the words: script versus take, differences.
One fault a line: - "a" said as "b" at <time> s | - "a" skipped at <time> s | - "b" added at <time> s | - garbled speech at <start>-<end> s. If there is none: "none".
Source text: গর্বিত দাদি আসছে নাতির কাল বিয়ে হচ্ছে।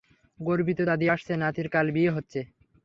none